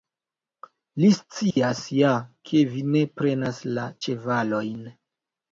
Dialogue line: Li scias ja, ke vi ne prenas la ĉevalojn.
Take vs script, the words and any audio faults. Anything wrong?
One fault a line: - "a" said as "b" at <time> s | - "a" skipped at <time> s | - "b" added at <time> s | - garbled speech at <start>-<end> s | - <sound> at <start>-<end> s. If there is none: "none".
- dropout at 1.5-1.6 s